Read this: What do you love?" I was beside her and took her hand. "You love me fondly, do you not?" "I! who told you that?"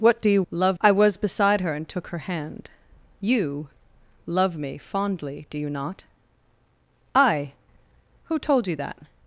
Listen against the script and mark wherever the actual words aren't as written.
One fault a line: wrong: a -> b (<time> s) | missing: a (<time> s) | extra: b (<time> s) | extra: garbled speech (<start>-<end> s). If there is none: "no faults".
no faults